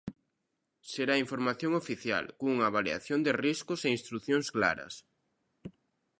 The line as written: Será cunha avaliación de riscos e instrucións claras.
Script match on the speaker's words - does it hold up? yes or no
no